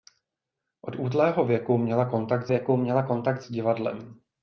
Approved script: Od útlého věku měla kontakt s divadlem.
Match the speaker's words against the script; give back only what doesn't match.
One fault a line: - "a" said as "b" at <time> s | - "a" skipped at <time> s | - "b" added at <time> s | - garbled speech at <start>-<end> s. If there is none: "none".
- "věku měla kontakt" added at 2.5 s